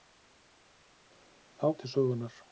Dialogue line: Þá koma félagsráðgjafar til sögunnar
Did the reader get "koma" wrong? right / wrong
wrong